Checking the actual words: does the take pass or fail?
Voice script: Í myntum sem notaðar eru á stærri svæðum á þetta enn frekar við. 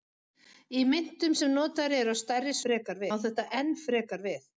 fail